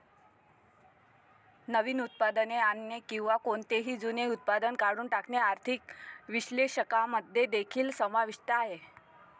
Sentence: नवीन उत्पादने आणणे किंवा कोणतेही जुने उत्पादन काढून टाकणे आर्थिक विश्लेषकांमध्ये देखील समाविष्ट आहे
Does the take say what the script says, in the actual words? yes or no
yes